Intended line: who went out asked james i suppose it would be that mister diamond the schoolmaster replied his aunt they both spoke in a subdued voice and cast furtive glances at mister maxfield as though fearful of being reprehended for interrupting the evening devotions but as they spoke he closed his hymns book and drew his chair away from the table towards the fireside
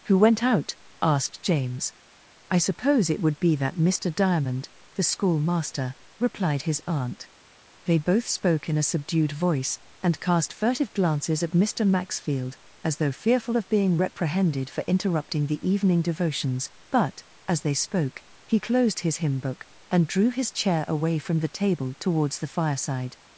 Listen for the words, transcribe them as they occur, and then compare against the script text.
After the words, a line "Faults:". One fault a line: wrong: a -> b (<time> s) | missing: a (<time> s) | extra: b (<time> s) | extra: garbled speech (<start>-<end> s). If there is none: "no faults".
who went out asked james i suppose it would be that mister diamond the schoolmaster replied his aunt they both spoke in a subdued voice and cast furtive glances at mister maxfield as though fearful of being reprehended for interrupting the evening devotions but as they spoke he closed his hymn book and drew his chair away from the table towards the fireside
Faults:
wrong: hymns -> hymn (19.2 s)